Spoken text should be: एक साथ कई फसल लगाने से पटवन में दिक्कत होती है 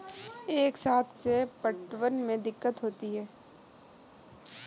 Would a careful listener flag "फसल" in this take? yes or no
yes